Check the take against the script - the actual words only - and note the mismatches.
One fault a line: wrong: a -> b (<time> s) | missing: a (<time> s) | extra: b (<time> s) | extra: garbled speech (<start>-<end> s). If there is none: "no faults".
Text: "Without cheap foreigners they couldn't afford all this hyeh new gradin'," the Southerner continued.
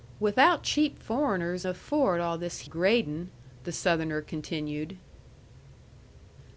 missing: they couldn't (1.6 s)
missing: hyeh new (2.6 s)